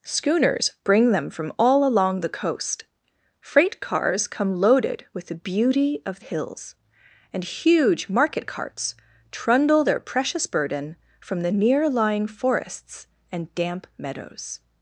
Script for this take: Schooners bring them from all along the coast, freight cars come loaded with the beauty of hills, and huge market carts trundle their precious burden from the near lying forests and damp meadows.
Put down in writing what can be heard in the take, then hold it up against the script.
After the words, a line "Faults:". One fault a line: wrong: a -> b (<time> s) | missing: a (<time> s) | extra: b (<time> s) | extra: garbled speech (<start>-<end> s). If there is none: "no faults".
Schooners bring them from all along the coast, freight cars come loaded with the beauty of hills, and huge market carts trundle their precious burden from the near lying forests and damp meadows.
Faults:
no faults